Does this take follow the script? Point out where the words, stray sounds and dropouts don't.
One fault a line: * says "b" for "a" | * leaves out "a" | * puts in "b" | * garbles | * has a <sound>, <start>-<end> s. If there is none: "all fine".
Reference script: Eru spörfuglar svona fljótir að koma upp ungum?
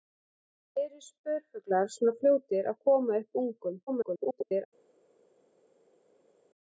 * garbles